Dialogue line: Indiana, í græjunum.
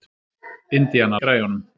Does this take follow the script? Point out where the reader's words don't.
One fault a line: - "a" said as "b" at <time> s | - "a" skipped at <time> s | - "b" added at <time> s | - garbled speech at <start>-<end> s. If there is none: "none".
none